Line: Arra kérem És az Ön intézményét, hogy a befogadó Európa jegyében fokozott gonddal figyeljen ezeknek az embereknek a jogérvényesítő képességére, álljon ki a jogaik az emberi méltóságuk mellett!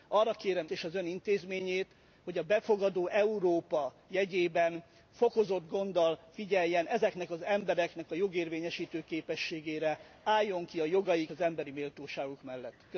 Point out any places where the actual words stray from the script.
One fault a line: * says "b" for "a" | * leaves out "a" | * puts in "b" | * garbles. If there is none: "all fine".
all fine